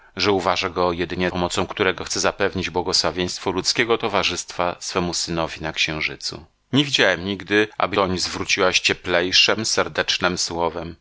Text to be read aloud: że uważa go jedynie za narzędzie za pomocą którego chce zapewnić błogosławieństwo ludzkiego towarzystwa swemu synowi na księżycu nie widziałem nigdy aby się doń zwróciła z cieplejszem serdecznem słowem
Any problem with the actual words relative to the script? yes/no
yes